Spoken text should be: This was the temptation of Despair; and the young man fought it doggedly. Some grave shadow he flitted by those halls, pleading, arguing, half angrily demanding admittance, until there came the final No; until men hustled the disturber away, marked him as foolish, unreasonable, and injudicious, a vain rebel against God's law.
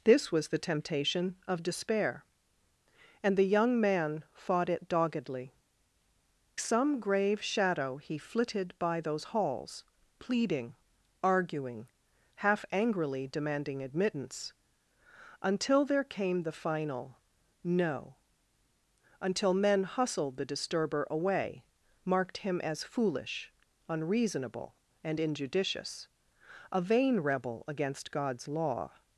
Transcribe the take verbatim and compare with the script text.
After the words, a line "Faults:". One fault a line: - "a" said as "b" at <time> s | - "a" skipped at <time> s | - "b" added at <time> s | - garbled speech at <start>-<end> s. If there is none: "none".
This was the temptation of Despair; and the young man fought it doggedly. Some grave shadow he flitted by those halls, pleading, arguing, half angrily demanding admittance, until there came the final No; until men hustled the disturber away, marked him as foolish, unreasonable, and injudicious, a vain rebel against God's law.
Faults:
none